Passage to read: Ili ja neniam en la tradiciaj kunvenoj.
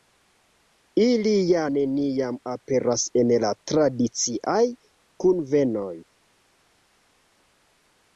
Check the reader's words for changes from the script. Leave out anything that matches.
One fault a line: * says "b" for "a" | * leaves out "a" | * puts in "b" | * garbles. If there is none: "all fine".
* puts in "aperas"